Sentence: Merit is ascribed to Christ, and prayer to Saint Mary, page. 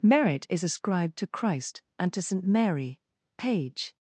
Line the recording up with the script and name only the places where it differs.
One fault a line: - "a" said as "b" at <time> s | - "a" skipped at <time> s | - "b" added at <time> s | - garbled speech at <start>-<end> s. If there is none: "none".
- "prayer" skipped at 2.1 s